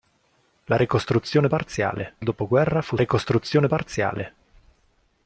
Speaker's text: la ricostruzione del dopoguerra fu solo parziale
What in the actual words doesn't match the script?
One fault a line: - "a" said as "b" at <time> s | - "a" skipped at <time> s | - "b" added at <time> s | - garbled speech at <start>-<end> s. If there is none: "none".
- "del" said as "parziale" at 1.5 s
- "solo" said as "ricostruzione" at 3.0 s